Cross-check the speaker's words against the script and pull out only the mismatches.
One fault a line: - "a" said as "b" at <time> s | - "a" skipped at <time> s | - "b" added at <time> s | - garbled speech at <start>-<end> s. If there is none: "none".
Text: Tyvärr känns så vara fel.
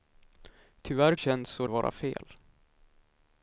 none